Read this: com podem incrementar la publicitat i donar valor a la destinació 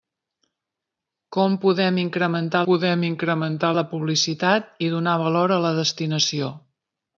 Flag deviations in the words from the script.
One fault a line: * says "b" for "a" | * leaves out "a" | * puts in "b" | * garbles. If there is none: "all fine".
* puts in "podem incrementar"